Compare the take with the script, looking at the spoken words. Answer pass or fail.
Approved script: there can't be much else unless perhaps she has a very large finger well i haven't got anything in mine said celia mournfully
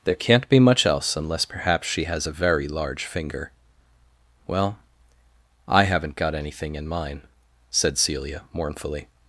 pass